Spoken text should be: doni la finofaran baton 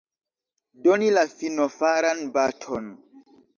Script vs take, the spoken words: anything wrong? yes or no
no